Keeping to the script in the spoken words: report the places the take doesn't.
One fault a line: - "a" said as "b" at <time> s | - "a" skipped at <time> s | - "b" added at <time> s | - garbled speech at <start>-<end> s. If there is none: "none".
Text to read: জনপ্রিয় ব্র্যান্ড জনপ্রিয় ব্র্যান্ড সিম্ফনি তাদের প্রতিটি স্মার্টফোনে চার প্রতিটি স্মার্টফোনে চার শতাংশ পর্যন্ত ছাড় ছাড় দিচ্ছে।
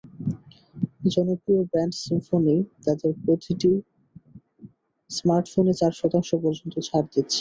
- "জনপ্রিয় ব্র্যান্ড" skipped at 1.9 s
- "প্রতিটি স্মার্টফোনে চার" skipped at 5.9 s
- "ছাড়" skipped at 7.1 s